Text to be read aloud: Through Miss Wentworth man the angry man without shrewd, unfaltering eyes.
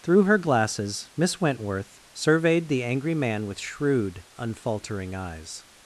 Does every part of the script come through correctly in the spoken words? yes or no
no